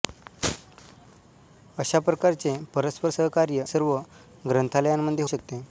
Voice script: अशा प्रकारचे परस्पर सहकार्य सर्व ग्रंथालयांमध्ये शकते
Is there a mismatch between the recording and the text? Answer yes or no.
no